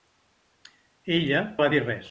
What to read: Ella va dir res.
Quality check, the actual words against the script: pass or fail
pass